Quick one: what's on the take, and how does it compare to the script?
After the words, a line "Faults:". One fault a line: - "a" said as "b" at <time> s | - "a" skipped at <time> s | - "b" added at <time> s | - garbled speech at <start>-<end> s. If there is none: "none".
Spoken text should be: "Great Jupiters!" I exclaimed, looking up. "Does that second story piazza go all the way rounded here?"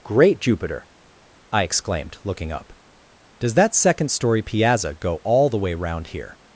"Great Jupiter!" I exclaimed, looking up. "Does that second story piazza go all the way round here?"
Faults:
- "Jupiters" said as "Jupiter" at 0.4 s
- "rounded" said as "round" at 5.7 s